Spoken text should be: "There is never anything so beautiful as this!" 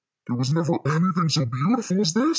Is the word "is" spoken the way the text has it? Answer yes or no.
no